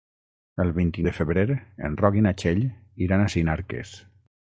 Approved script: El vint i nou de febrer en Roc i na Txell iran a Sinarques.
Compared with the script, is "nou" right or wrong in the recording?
wrong